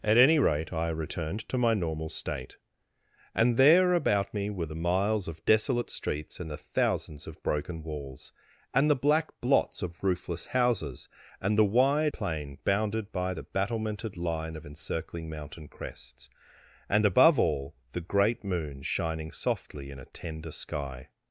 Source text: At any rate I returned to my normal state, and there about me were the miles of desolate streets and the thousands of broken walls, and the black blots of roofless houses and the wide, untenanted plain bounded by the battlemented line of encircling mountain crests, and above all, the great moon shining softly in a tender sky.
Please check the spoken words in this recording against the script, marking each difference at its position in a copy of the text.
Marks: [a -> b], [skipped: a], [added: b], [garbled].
At any rate I returned to my normal state, and there about me were the miles of desolate streets and the thousands of broken walls, and the black blots of roofless houses and the wide, [skipped: untenanted] plain bounded by the battlemented line of encircling mountain crests, and above all, the great moon shining softly in a tender sky.